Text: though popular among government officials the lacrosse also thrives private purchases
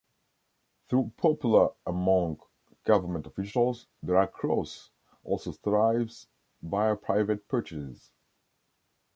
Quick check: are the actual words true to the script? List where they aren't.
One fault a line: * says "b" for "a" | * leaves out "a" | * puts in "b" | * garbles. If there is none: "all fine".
* puts in "via"